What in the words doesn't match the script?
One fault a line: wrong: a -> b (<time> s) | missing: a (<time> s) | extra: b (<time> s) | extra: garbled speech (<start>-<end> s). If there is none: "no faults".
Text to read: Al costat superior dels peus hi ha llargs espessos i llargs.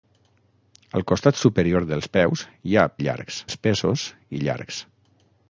no faults